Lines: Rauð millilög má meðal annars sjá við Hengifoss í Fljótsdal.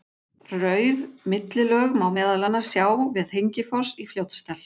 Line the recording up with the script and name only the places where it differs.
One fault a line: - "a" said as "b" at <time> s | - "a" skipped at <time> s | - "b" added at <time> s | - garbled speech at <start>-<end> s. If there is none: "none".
none